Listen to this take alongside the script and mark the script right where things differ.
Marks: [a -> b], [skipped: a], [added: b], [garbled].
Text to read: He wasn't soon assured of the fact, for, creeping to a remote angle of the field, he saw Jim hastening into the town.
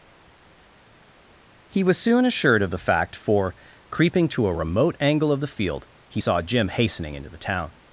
He [wasn't -> was] soon assured of the fact, for, creeping to a remote angle of the field, he saw Jim hastening into the town.